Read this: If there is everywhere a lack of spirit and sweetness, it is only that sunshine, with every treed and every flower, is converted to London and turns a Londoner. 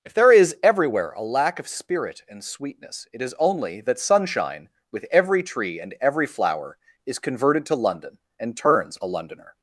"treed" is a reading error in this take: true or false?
true